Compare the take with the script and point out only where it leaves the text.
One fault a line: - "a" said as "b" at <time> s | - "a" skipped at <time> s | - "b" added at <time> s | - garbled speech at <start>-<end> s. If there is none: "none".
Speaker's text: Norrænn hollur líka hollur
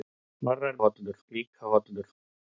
none